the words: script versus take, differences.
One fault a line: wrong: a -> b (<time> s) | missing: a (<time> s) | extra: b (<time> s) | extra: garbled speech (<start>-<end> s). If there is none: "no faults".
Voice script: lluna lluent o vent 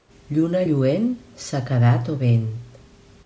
extra: sequedat (1.5 s)